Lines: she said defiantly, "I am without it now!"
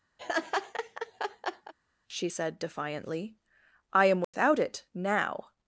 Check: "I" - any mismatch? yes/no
no